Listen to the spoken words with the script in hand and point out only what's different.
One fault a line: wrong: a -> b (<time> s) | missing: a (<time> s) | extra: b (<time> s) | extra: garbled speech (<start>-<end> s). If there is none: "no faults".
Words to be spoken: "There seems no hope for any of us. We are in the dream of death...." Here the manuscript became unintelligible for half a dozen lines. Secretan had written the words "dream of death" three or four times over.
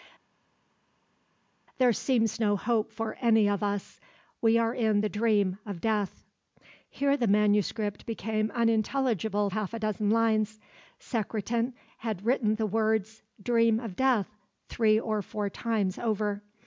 missing: for (9.5 s)